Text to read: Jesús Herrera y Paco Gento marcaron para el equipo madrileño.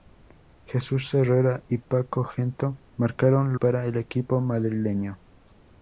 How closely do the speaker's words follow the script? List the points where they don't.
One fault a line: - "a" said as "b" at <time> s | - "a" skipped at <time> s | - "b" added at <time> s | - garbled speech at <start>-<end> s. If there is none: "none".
none